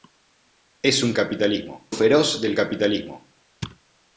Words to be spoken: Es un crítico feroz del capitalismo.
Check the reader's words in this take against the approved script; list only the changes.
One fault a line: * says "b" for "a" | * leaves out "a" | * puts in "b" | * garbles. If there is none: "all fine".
* says "capitalismo" for "crítico"